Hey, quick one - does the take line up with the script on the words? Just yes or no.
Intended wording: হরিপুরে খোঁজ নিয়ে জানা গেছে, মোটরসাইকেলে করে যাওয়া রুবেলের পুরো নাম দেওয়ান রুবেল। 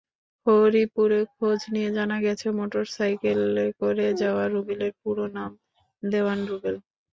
yes